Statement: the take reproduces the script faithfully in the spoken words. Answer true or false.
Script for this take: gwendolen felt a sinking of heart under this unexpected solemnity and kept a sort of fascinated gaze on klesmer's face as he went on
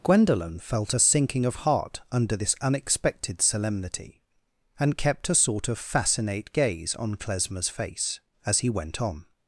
false